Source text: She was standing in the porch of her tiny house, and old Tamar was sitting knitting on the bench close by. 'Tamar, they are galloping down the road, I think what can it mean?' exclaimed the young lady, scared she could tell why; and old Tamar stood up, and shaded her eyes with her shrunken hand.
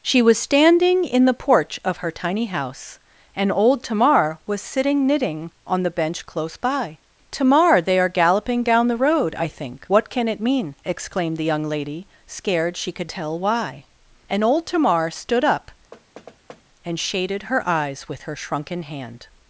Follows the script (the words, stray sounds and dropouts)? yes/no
no